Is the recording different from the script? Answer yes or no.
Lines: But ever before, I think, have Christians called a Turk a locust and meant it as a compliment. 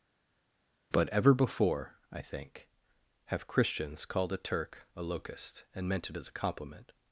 no